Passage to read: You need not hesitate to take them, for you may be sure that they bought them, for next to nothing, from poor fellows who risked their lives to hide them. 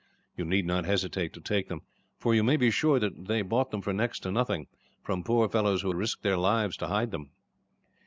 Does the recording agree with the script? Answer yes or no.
yes